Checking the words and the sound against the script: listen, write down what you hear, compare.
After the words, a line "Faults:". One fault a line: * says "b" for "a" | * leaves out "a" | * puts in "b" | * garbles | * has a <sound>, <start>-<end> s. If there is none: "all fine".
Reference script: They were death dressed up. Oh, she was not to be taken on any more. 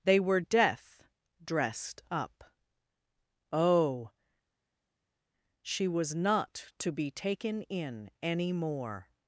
They were death dressed up. Oh, she was not to be taken in any more.
Faults:
* says "in" for "on"